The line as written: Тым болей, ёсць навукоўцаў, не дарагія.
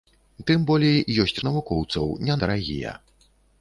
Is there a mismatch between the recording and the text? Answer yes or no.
no